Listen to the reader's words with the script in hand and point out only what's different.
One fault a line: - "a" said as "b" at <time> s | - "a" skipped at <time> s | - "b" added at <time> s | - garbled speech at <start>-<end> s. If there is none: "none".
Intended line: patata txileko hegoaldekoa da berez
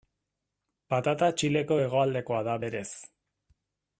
none